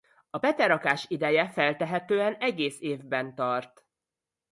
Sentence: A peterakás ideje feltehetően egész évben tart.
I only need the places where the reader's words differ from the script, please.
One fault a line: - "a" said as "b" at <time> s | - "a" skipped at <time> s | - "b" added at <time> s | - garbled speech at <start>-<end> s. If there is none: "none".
none